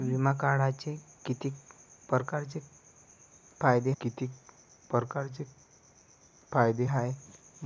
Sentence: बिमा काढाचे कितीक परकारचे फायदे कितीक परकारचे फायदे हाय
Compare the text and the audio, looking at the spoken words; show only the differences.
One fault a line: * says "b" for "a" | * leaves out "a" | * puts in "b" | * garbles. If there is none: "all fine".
all fine